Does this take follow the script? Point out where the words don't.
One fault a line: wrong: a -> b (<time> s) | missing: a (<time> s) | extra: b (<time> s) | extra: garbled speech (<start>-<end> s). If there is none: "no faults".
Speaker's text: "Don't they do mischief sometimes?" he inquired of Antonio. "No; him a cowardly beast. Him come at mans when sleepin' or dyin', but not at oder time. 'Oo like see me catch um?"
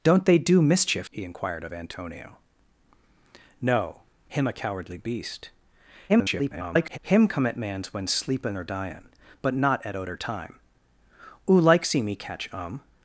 missing: sometimes (1.1 s)
extra: garbled speech (6.1-7.0 s)